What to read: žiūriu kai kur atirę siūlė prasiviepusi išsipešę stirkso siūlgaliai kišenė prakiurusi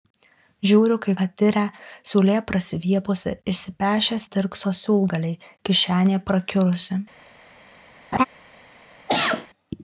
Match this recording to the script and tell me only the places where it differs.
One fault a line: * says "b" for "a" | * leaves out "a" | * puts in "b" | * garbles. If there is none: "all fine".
* leaves out "kur"